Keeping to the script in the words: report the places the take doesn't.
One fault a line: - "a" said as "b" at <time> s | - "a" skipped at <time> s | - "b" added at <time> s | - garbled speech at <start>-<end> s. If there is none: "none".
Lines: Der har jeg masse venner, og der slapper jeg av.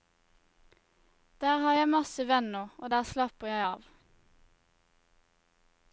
none